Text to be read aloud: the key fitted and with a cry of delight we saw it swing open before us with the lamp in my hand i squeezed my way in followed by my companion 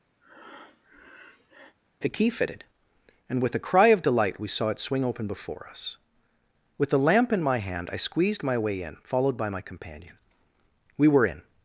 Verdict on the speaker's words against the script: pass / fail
fail